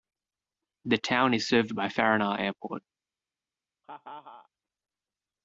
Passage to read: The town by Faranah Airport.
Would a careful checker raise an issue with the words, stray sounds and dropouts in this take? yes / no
yes